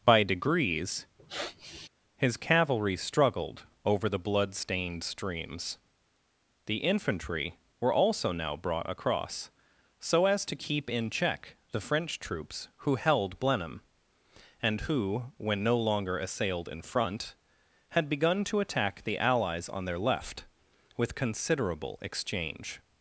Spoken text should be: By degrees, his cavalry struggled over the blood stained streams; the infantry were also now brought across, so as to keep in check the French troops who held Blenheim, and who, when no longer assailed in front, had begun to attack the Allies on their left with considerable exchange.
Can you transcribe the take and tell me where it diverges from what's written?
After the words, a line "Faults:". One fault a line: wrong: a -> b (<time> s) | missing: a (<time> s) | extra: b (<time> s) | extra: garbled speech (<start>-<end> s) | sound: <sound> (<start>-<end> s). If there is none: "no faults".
By degrees, his cavalry struggled over the blood stained streams; the infantry were also now brought across, so as to keep in check the French troops who held Blenheim, and who, when no longer assailed in front, had begun to attack the Allies on their left with considerable exchange.
Faults:
sound: sniff (1.2-1.9 s)